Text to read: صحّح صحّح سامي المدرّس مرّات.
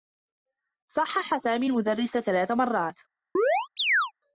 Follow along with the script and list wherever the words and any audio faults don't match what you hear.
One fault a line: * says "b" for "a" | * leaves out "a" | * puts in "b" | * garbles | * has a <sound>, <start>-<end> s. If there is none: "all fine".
* leaves out "صحّح"
* puts in "ثلاث"
* has a chirp, 3.4-4.1 s